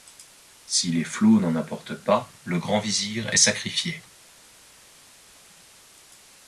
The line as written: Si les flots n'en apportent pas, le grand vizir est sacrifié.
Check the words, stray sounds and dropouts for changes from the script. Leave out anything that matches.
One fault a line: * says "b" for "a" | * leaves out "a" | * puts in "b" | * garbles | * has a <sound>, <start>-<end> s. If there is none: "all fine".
all fine